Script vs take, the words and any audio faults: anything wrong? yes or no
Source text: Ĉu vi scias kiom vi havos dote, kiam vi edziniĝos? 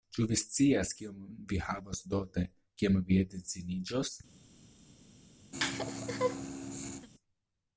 yes